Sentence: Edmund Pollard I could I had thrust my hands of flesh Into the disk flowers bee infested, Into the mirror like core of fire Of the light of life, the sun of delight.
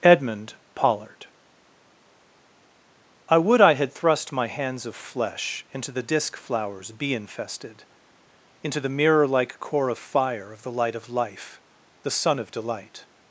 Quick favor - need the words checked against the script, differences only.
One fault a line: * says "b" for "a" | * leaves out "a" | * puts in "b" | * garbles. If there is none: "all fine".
* says "would" for "could"